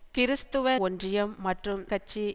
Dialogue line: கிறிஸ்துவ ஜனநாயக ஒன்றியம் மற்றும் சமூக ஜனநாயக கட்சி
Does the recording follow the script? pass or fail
fail